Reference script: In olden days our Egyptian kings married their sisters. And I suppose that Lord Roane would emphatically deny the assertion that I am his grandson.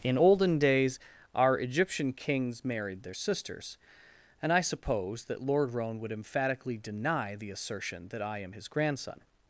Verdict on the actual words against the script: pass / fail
pass